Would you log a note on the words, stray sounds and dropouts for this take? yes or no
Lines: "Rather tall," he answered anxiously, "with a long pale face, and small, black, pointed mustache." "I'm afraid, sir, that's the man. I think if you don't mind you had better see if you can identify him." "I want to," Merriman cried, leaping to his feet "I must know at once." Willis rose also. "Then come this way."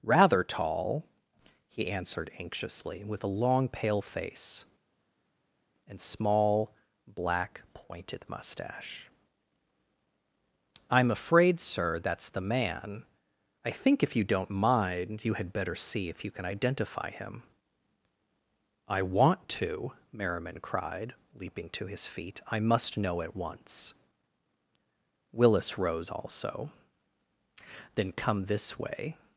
no